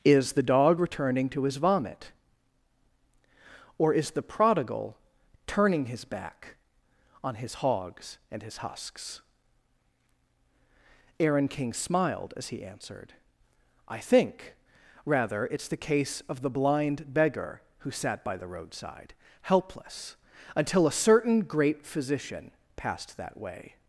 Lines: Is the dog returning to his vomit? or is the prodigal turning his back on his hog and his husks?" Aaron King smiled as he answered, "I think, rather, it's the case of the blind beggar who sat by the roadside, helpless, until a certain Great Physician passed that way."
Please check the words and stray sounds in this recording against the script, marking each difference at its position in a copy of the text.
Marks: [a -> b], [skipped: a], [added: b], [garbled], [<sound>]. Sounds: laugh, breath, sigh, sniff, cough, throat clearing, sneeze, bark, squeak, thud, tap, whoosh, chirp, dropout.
Is the dog returning to his vomit? or is the prodigal turning his back on his [hog -> hogs] and his husks?" Aaron King smiled as he answered, "I think, rather, it's the case of the blind beggar who sat by the roadside, helpless, until a certain Great Physician passed that way."